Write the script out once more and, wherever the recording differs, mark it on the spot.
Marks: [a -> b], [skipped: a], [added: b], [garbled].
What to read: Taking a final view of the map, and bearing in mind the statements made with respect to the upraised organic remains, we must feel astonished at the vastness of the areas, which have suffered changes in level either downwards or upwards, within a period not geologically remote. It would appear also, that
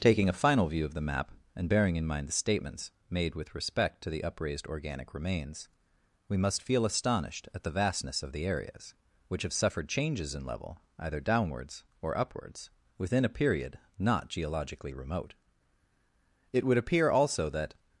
Taking a final view of the map, and bearing in mind the statements made with respect to the upraised organic remains, we must feel astonished at the vastness of the areas, which have suffered changes in level either downwards or upwards, within a period not geologically remote. It would appear also, that